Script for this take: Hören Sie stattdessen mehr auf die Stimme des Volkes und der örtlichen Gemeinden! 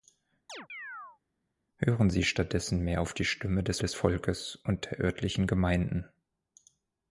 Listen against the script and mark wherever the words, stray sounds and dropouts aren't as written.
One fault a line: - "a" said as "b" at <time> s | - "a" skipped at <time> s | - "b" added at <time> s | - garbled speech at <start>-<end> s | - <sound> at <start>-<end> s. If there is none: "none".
- chirp at 0.5-1.2 s
- "des" added at 3.8 s